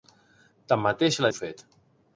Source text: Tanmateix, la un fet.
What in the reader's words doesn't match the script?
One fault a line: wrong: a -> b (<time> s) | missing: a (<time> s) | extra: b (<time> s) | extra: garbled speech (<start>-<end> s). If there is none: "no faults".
no faults